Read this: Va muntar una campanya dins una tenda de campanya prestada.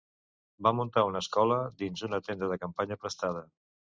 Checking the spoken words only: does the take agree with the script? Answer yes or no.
no